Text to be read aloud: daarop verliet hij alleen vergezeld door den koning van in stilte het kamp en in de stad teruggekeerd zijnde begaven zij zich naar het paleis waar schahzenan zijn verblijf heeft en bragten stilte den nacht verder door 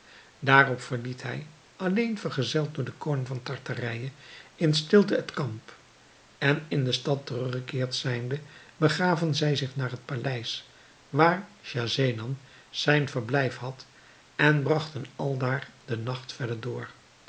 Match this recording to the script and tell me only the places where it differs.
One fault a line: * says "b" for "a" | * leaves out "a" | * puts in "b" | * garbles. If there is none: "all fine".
* puts in "tartarije"
* says "had" for "heeft"
* says "aldaar" for "stilte"